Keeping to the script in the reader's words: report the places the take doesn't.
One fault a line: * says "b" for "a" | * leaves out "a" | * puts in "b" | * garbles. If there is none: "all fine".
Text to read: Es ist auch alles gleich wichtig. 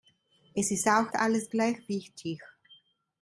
all fine